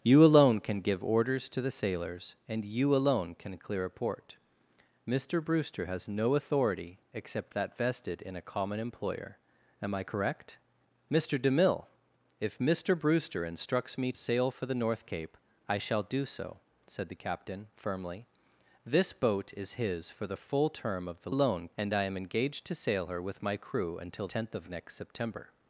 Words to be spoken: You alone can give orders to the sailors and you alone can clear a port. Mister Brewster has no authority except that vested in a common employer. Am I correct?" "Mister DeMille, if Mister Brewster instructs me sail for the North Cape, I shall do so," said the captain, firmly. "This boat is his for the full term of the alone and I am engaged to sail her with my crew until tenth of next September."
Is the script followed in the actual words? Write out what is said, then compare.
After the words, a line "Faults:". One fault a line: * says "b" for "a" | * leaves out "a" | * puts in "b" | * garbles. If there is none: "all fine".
You alone can give orders to the sailors and you alone can clear a port. Mister Brewster has no authority except that vested in a common employer. Am I correct?" "Mister DeMille, if Mister Brewster instructs me sail for the North Cape, I shall do so," said the captain, firmly. "This boat is his for the full term of the alone and I am engaged to sail her with my crew until tenth of next September."
Faults:
all fine